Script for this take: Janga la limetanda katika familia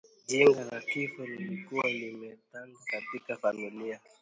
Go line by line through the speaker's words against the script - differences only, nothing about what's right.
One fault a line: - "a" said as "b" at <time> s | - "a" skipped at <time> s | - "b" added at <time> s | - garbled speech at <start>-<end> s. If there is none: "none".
- "kifo lilikuwa" added at 0.8 s